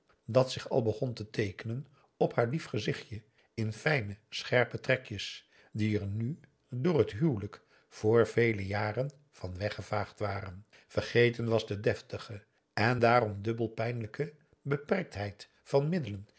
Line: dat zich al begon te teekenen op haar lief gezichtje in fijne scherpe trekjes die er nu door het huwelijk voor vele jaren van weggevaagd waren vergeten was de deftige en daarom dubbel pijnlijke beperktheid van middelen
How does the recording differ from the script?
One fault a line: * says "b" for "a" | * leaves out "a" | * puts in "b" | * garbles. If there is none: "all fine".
all fine